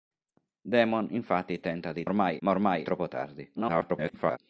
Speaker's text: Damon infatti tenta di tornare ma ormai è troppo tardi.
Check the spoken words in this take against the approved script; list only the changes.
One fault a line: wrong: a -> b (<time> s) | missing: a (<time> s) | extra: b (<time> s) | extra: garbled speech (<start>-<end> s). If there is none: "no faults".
wrong: tornare -> ormai (2.0 s)
missing: è (2.8 s)
extra: garbled speech (3.6-4.4 s)